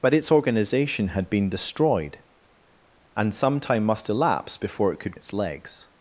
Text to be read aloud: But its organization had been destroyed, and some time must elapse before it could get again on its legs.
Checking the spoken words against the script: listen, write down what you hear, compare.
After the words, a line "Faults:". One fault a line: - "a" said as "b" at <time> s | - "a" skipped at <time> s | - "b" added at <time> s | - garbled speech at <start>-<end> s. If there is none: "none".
But its organization had been destroyed, and some time must elapse before it could its legs.
Faults:
- "get again on" skipped at 5.2 s